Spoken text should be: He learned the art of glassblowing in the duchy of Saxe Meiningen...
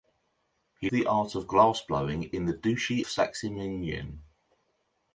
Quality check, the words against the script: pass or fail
fail